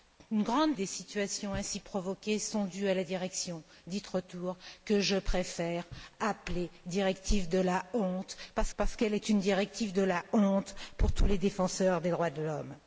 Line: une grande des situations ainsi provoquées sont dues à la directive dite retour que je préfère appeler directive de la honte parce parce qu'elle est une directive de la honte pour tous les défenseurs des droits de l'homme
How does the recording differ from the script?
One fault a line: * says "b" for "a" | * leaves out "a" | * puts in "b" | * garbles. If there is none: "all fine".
all fine